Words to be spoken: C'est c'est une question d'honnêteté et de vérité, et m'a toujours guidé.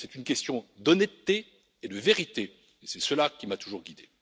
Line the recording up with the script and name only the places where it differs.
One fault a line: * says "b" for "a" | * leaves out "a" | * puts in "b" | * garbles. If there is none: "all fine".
* leaves out "c'est"
* puts in "c'est cela qui"